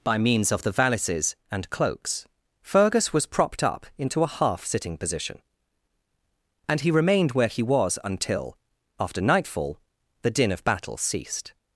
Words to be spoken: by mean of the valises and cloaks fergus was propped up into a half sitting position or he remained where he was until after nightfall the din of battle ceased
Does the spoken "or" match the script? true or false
false